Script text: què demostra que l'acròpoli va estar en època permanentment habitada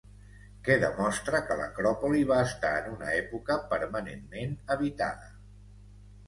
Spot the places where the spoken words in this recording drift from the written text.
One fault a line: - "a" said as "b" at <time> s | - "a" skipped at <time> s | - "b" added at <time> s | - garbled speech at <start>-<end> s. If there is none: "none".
- "una" added at 2.9 s